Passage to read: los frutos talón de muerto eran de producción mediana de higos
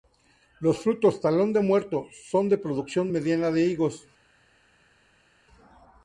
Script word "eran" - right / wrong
wrong